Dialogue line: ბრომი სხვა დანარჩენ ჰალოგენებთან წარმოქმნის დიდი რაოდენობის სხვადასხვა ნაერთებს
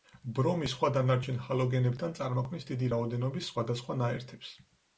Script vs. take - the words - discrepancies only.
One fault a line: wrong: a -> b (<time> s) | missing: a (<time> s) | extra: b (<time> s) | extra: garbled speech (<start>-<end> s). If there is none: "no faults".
no faults